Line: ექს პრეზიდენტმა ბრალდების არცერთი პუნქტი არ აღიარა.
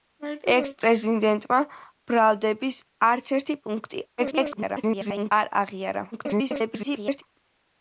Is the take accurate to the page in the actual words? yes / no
no